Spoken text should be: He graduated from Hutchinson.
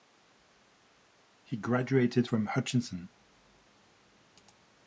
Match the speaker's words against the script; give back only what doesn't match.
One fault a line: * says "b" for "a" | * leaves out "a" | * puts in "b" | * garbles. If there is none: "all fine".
all fine